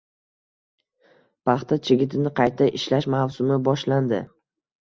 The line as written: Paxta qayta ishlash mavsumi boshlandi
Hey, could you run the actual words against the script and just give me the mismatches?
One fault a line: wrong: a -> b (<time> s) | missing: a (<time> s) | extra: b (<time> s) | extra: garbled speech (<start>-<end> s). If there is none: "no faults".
extra: chigitini (1.9 s)